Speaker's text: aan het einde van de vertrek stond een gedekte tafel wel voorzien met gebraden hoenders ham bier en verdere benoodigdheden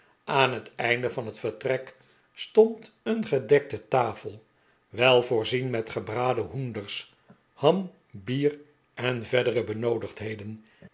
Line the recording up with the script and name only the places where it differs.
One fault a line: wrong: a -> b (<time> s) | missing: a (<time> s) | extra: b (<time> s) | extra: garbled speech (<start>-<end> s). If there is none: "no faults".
wrong: de -> het (1.2 s)